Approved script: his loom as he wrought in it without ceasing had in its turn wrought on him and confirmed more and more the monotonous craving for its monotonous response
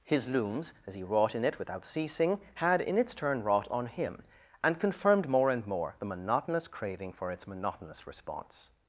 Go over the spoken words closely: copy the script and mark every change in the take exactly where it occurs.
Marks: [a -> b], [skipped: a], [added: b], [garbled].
his [loom -> looms] as he wrought in it without ceasing had in its turn wrought on him and confirmed more and more the monotonous craving for its monotonous response